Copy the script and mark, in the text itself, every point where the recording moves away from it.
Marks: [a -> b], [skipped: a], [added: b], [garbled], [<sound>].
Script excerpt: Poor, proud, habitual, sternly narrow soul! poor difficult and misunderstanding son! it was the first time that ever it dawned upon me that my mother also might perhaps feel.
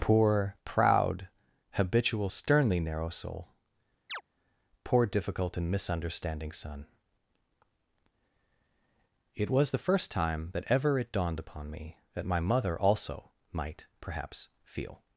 Poor, proud, habitual, sternly narrow soul! [chirp] poor difficult and misunderstanding son! it was the first time that ever it dawned upon me that my mother also might perhaps feel.